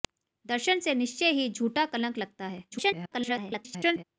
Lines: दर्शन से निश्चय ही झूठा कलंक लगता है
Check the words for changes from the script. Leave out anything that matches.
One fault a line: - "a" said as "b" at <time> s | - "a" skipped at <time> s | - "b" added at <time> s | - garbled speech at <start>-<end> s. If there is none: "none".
- garbled speech at 2.7-4.0 s